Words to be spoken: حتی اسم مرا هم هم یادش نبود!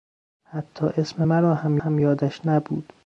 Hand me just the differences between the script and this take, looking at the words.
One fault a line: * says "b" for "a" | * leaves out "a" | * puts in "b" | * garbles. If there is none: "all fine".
all fine